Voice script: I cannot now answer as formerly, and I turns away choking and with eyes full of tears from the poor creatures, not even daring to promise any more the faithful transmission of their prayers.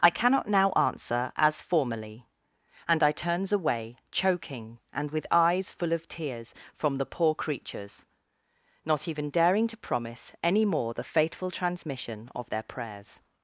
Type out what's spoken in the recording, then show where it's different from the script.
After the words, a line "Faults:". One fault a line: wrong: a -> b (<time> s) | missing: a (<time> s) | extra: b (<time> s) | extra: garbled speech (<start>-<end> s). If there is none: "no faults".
I cannot now answer as formerly, and I turns away choking and with eyes full of tears from the poor creatures, not even daring to promise any more the faithful transmission of their prayers.
Faults:
no faults